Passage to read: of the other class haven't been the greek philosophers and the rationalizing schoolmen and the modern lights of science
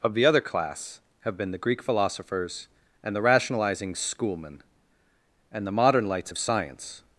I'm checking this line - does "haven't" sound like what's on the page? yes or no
no